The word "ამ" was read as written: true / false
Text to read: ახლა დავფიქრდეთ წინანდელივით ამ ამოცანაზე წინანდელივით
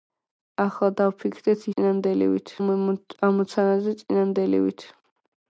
true